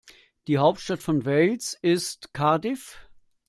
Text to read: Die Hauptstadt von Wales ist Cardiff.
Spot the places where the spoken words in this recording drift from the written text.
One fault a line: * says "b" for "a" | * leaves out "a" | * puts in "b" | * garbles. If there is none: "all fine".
all fine